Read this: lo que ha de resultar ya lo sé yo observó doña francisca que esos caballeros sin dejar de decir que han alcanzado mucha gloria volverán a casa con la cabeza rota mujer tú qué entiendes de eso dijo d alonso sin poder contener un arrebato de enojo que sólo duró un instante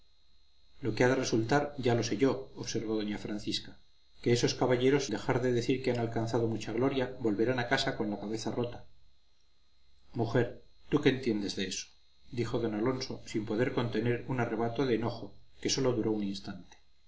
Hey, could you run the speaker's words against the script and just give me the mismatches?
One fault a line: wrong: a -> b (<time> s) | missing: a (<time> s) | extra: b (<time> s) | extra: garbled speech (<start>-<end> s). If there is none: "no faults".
missing: sin (5.0 s)